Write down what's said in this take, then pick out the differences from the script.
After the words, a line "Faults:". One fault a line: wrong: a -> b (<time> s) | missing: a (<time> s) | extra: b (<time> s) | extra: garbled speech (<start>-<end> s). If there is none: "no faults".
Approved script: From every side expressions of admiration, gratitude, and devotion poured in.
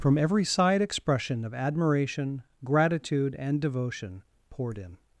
From every side expression of admiration, gratitude, and devotion poured in.
Faults:
wrong: expressions -> expression (0.8 s)